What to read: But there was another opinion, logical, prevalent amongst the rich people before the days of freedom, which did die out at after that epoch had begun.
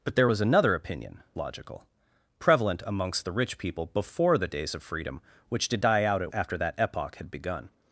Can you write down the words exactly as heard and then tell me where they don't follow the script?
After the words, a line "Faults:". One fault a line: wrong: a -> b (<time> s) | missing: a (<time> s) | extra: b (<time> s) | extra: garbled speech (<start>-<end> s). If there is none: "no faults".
But there was another opinion, logical, prevalent amongst the rich people before the days of freedom, which did die out at after that epoch had begun.
Faults:
no faults